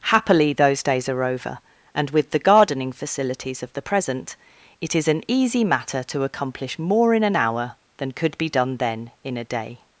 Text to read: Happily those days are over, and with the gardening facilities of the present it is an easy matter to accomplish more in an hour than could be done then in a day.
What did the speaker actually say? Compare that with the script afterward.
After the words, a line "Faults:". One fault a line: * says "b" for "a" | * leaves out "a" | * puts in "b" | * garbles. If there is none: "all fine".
Happily those days are over, and with the gardening facilities of the present it is an easy matter to accomplish more in an hour than could be done then in a day.
Faults:
all fine